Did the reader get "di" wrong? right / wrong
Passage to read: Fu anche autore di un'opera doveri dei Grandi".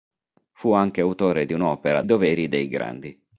right